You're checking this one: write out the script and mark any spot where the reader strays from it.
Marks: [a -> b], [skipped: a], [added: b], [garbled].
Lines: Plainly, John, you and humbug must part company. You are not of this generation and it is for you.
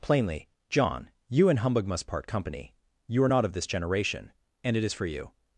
Plainly, John, you and humbug must part company. You are not of this generation and it is for you.